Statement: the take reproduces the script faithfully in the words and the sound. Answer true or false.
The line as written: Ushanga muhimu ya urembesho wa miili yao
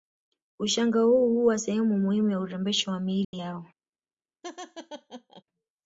false